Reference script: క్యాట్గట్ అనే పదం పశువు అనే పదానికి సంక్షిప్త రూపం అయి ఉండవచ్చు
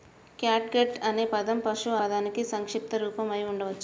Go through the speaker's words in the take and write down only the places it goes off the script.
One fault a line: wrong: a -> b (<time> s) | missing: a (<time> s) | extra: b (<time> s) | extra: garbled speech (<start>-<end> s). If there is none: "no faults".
missing: అనే (2.0 s)